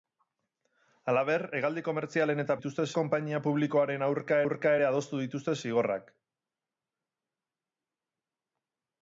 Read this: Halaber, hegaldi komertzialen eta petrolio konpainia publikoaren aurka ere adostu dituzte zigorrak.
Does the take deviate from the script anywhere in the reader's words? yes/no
yes